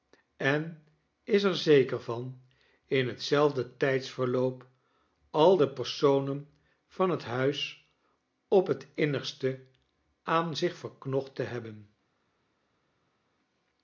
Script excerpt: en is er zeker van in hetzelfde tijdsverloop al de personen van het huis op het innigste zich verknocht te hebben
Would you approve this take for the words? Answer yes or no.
no